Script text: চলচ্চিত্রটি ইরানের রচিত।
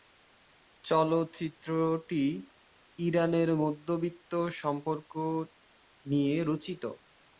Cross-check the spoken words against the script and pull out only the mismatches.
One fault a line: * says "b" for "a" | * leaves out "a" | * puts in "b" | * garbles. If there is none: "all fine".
* puts in "মধ্যবিত্ত সম্পর্ক নিয়ে"